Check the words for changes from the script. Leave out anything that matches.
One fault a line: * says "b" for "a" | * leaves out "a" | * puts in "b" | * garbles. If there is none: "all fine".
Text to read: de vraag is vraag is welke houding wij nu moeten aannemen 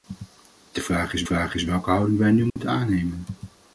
all fine